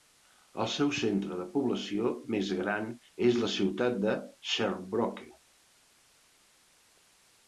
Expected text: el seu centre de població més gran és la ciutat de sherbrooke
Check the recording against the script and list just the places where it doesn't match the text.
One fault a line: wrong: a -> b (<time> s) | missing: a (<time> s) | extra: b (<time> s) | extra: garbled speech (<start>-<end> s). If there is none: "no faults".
no faults